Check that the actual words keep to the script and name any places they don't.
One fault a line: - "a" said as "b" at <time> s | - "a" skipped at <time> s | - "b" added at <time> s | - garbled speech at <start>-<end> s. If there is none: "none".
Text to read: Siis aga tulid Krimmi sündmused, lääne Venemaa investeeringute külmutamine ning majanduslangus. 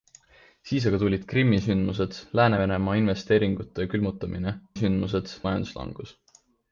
- "ning" said as "sündmused" at 4.8 s